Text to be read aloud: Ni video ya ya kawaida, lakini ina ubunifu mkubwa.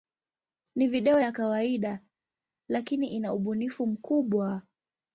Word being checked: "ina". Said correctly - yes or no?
yes